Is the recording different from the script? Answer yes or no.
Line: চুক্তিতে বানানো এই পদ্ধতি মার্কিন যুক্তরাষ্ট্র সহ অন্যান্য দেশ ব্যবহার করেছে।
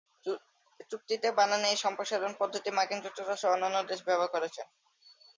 yes